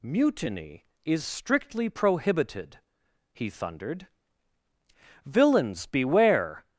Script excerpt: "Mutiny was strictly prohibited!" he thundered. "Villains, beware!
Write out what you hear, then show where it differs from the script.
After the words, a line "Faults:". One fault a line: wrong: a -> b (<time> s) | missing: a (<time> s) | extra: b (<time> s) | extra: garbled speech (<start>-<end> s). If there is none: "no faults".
"Mutiny is strictly prohibited!" he thundered. "Villains, beware!
Faults:
wrong: was -> is (1.1 s)